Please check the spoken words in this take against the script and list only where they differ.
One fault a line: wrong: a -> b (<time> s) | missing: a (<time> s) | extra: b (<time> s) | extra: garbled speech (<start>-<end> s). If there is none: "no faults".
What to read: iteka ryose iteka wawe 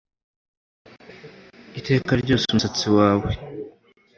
wrong: iteka -> umusatsi (2.5 s)